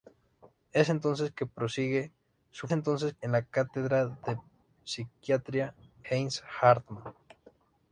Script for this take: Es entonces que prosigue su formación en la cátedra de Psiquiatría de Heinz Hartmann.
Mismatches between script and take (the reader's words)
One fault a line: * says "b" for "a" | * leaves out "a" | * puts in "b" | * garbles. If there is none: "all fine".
* says "entonces" for "formación"
* leaves out "de"